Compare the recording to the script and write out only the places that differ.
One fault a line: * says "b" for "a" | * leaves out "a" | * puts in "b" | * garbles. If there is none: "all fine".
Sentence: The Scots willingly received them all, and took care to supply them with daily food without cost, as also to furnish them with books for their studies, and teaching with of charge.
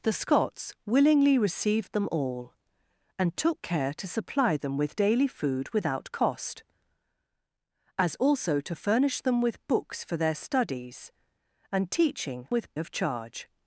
all fine